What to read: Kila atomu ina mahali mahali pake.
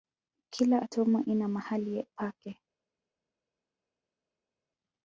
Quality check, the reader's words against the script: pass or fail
fail